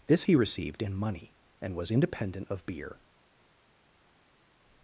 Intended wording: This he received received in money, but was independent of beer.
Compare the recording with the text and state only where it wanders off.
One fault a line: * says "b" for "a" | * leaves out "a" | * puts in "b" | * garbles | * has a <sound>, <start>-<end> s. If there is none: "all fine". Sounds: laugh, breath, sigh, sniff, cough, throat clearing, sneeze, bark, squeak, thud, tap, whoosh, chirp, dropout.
* leaves out "received"
* says "and" for "but"